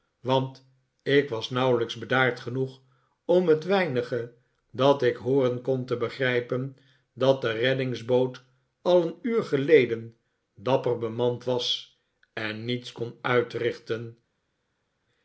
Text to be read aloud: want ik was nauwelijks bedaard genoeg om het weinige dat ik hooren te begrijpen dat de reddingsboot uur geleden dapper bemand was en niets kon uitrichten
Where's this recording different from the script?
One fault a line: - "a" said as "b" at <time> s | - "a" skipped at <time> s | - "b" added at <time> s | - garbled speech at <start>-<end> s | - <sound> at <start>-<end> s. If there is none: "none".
- "kon" added at 5.6 s
- "al een" added at 8.8 s